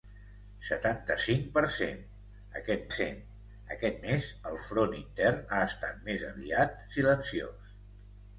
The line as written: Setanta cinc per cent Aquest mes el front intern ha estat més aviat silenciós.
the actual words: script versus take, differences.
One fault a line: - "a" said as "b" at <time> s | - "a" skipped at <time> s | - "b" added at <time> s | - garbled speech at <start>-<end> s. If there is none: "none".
- "cent Aquest" added at 2.9 s